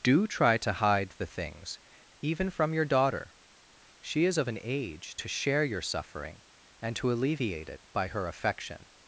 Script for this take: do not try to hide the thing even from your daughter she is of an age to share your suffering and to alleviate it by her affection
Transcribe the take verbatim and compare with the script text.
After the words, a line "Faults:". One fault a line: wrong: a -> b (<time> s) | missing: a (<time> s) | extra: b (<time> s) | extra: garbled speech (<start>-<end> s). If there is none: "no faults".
do try to hide the things even from your daughter she is of an age to share your suffering and to alleviate it by her affection
Faults:
missing: not (0.3 s)
wrong: thing -> things (1.2 s)